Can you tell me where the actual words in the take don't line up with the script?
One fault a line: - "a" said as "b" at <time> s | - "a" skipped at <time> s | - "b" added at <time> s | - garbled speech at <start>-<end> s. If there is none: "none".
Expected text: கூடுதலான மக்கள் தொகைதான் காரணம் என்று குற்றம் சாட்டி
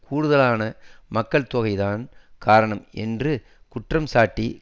none